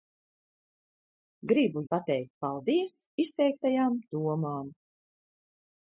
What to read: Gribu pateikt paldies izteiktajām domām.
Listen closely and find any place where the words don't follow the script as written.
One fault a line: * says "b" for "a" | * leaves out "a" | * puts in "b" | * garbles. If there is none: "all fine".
all fine